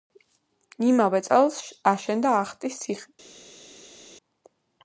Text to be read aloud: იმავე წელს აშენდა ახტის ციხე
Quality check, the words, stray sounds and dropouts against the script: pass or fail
pass